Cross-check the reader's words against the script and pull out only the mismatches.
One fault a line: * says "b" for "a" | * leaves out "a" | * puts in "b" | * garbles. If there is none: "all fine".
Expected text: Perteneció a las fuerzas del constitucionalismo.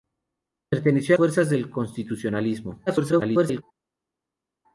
* leaves out "las"
* garbles